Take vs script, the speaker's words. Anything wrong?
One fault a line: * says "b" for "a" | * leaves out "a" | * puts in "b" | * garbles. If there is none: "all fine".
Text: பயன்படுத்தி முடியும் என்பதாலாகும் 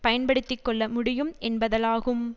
* puts in "கொள்ள"